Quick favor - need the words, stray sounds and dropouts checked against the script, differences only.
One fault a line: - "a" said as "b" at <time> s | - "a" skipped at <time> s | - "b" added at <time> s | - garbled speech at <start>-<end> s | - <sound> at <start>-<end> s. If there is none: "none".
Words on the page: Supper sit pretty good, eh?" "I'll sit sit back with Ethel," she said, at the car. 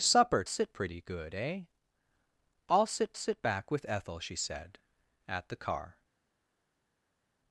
none